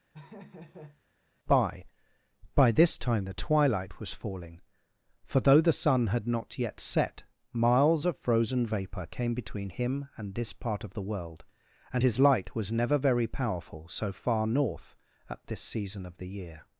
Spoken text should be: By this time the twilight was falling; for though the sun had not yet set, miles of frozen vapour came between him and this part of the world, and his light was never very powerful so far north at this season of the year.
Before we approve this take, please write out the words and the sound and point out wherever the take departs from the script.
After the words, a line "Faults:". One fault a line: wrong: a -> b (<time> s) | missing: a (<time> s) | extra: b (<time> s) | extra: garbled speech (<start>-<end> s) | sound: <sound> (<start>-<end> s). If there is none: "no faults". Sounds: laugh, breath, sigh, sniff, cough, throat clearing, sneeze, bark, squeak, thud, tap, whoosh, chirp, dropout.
By by this time the twilight was falling; for though the sun had not yet set, miles of frozen vapour came between him and this part of the world, and his light was never very powerful so far north at this season of the year.
Faults:
sound: laugh (0.1-1.0 s)
extra: by (2.5 s)